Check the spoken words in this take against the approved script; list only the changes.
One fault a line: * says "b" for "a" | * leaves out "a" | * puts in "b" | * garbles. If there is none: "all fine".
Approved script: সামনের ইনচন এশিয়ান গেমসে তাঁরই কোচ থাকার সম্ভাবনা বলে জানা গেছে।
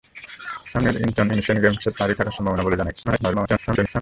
* leaves out "কোচ"
* garbles